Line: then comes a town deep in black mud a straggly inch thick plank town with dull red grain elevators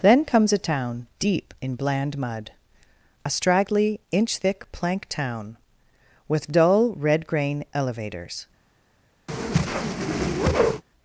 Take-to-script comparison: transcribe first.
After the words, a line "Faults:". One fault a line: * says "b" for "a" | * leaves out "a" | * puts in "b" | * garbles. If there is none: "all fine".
then comes a town deep in bland mud a straggly inch thick plank town with dull red grain elevators
Faults:
* says "bland" for "black"